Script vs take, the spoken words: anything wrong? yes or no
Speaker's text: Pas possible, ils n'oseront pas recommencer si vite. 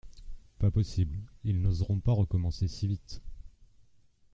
no